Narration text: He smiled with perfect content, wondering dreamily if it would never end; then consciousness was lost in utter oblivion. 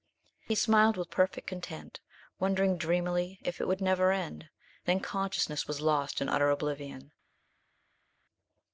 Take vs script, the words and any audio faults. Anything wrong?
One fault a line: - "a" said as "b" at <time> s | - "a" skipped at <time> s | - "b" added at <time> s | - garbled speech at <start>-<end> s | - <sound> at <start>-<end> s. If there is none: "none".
none